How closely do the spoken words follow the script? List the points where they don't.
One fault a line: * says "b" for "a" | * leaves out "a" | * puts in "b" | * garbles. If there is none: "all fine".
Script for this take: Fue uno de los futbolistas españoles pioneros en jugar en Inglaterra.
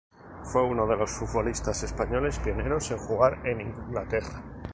all fine